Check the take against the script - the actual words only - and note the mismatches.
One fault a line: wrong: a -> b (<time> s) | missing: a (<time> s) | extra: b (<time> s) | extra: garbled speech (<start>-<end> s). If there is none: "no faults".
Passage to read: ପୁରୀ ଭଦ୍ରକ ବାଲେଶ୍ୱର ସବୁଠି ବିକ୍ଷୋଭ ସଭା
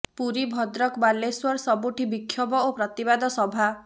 extra: ଓ ପ୍ରତିବାଦ (2.6 s)